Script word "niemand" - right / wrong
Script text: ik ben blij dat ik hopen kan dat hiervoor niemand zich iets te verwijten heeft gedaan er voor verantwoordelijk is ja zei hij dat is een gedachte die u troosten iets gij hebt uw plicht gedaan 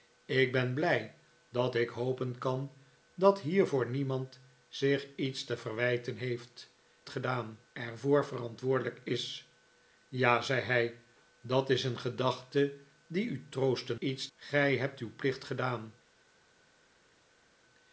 right